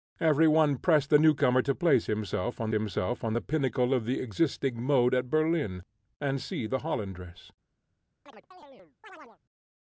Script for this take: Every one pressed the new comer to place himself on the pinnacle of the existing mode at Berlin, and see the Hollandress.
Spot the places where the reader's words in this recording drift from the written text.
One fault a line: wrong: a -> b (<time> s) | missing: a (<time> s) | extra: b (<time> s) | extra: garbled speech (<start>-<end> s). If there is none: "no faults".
extra: himself on (2.7 s)